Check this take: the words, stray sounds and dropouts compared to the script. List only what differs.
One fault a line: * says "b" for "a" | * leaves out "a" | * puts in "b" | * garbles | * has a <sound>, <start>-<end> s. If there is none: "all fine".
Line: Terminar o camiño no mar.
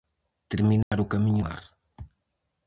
* has a dropout, 0.8-0.9 s
* leaves out "no"